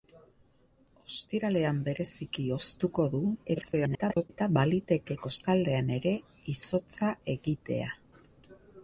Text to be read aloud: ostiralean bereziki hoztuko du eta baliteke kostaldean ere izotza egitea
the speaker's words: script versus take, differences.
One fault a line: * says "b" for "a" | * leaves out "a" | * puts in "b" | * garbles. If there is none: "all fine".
* garbles